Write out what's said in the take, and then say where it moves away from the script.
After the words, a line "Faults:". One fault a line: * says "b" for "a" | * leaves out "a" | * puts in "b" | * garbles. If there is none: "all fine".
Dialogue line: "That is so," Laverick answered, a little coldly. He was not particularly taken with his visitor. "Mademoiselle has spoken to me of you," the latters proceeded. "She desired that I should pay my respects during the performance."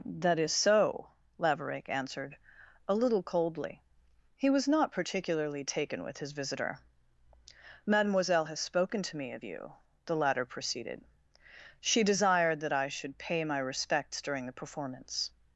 "That is so," Laverick answered, a little coldly. He was not particularly taken with his visitor. "Mademoiselle has spoken to me of you," the latter proceeded. "She desired that I should pay my respects during the performance."
Faults:
* says "latter" for "latters"